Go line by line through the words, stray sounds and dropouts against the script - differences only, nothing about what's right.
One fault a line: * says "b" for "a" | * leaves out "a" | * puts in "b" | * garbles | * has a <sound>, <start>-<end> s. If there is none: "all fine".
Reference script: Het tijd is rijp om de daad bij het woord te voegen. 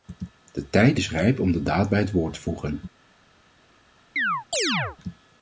* says "De" for "Het"
* has a chirp, 4.2-5.0 s